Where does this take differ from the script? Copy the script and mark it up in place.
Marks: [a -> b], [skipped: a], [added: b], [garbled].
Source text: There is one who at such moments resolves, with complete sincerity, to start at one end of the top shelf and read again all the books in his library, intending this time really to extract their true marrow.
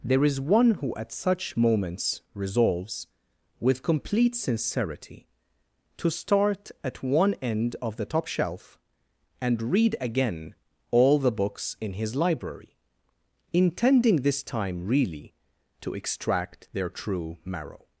There is one who at such moments resolves, with complete sincerity, to start at one end of the top shelf and read again all the books in his library, intending this time really to extract their true marrow.